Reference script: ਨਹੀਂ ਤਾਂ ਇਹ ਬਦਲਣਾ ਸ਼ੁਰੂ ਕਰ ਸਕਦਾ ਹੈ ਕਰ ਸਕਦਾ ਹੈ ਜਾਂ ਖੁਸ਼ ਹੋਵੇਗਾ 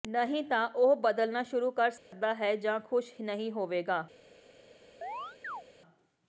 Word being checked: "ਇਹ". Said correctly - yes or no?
no